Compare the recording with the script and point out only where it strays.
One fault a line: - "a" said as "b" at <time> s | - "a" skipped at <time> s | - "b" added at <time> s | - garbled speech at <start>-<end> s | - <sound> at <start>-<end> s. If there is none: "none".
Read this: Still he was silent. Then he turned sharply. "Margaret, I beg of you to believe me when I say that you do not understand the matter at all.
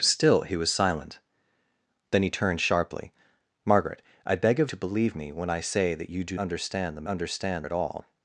- "you" skipped at 4.7 s
- "not" skipped at 6.4 s
- "matter" said as "understand" at 7.1 s